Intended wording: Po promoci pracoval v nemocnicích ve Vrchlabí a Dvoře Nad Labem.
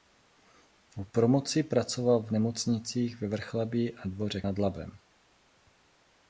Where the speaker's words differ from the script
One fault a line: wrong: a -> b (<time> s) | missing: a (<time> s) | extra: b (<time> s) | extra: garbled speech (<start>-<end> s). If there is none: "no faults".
no faults